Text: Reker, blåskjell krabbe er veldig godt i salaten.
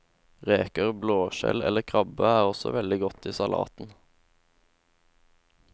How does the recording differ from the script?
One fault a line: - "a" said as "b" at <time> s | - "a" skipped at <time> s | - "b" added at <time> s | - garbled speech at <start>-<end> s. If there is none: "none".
- "eller" added at 1.6 s
- "også" added at 2.5 s